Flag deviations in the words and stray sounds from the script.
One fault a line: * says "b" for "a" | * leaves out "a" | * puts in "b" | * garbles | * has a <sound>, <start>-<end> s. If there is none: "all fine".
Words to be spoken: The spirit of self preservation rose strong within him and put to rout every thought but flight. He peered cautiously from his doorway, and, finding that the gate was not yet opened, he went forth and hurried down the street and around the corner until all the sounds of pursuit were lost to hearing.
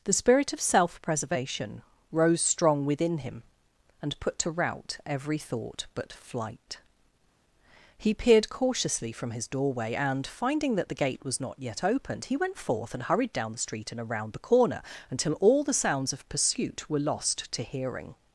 all fine